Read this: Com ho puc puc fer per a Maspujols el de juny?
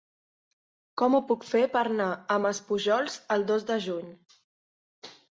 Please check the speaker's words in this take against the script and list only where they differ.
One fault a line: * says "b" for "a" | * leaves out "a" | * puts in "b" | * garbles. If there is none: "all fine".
* leaves out "puc"
* puts in "anar"
* puts in "dos"